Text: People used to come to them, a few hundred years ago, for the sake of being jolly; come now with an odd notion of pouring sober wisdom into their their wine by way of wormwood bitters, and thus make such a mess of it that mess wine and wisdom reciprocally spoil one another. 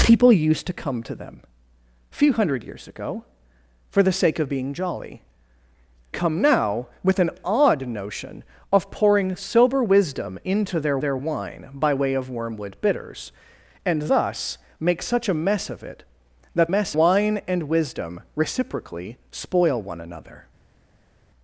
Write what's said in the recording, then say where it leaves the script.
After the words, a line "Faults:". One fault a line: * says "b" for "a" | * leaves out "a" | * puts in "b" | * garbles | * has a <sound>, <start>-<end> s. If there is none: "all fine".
People used to come to them, a few hundred years ago, for the sake of being jolly; come now with an odd notion of pouring sober wisdom into their their wine by way of wormwood bitters, and thus make such a mess of it that mess wine and wisdom reciprocally spoil one another.
Faults:
all fine